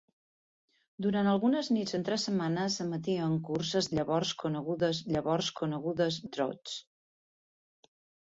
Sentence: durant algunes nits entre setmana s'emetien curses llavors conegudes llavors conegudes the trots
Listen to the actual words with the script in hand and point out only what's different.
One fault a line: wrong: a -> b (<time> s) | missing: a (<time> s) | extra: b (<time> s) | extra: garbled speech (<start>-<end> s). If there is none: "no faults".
no faults